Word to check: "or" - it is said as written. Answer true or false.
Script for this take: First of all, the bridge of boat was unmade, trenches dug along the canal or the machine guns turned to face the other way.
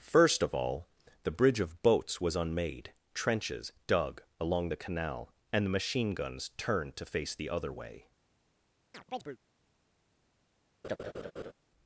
false